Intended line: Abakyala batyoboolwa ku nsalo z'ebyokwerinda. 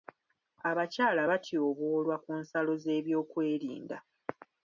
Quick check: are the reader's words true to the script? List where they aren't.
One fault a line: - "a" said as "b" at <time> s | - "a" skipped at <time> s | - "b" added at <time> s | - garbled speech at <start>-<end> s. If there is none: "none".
none